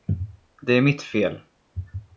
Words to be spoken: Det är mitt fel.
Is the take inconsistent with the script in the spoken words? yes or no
no